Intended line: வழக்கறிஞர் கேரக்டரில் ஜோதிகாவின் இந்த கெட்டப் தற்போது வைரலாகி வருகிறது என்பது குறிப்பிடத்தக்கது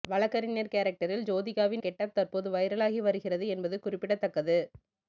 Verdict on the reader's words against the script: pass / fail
fail